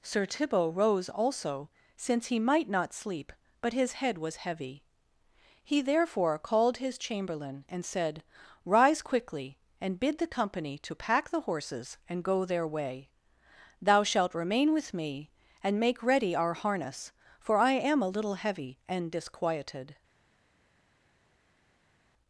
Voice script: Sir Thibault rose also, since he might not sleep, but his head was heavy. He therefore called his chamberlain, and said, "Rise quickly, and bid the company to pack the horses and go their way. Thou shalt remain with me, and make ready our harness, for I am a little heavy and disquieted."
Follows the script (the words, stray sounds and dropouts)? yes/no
yes